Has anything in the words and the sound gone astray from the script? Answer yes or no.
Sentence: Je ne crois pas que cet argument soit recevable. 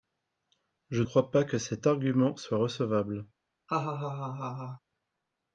yes